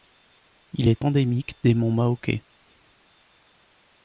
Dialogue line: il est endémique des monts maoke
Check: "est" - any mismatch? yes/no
no